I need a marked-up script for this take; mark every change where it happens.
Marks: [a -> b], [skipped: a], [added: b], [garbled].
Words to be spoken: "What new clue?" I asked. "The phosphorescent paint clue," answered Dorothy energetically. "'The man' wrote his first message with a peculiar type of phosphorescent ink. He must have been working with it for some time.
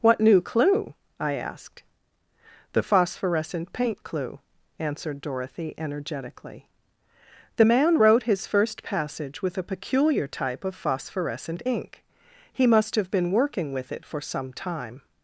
"What new clue?" I asked. "The phosphorescent paint clue," answered Dorothy energetically. "'The man' wrote his first [message -> passage] with a peculiar type of phosphorescent ink. He must have been working with it for some time.